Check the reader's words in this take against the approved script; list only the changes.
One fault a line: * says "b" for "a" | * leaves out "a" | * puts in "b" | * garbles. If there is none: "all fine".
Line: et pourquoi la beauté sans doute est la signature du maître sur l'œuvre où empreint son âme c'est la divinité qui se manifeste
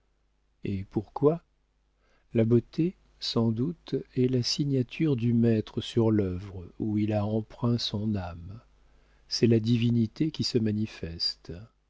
* puts in "il a"